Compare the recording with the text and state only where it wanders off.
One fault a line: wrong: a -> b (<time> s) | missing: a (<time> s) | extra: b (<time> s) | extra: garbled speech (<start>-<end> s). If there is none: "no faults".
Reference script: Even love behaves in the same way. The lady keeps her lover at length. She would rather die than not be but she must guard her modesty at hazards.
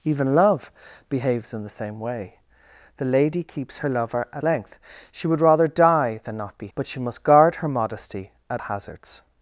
no faults